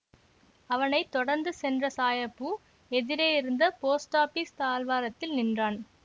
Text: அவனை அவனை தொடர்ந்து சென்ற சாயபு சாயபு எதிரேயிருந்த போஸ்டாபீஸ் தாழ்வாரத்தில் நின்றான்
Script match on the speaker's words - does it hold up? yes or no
no